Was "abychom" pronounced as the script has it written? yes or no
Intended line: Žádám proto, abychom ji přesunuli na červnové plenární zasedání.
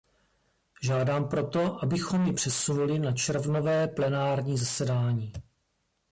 yes